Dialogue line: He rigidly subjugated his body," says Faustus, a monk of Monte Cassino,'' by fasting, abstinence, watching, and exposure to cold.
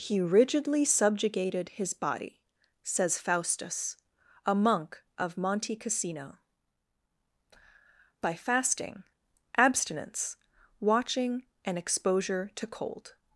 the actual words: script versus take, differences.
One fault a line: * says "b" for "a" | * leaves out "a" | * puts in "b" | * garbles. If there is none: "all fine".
all fine